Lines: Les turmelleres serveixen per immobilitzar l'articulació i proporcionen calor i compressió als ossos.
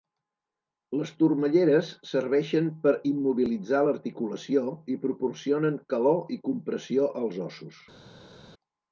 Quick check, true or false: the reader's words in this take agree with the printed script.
true